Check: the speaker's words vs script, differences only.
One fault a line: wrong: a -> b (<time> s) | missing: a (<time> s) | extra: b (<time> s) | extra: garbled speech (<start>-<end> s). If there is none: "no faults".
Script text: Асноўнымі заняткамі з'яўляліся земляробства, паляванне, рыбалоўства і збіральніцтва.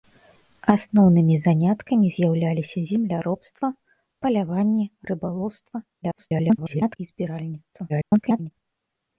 extra: garbled speech (6.0-7.0 s)
extra: garbled speech (7.9-8.5 s)